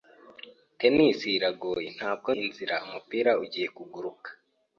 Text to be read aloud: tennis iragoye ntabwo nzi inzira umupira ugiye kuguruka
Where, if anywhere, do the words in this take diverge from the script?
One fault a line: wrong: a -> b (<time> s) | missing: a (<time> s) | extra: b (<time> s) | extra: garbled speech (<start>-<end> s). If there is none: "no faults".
missing: nzi (2.3 s)